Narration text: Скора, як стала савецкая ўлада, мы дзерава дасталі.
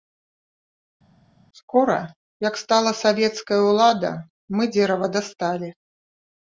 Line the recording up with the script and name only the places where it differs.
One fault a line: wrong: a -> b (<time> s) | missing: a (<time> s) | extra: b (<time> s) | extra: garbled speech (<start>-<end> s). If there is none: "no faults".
no faults